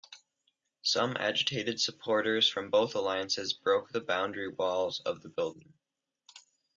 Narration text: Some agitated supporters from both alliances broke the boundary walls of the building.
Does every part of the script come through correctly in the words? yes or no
yes